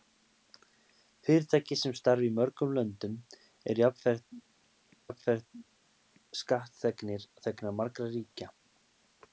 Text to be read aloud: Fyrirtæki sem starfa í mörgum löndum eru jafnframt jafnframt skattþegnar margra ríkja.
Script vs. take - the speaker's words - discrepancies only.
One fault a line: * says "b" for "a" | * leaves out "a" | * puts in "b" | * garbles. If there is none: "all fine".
all fine